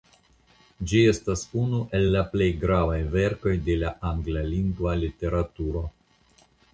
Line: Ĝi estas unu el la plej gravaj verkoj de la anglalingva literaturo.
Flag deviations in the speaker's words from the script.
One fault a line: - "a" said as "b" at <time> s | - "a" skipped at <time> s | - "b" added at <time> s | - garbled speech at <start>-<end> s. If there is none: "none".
none